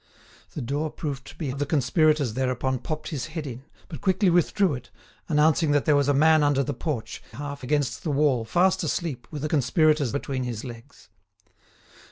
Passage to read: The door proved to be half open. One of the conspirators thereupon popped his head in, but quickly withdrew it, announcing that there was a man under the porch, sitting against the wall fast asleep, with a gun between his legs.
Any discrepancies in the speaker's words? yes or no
yes